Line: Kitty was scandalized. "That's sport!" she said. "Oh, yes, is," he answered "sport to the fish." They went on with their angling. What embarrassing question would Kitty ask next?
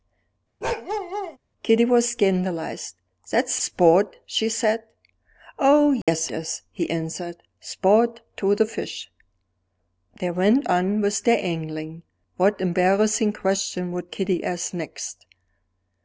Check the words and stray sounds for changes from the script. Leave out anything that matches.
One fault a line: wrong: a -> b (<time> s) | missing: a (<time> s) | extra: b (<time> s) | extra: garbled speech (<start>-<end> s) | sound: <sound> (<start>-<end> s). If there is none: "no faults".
sound: bark (0.6-1.4 s)
sound: dropout (6.0-6.1 s)